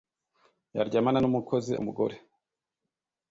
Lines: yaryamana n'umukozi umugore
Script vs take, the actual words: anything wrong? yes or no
no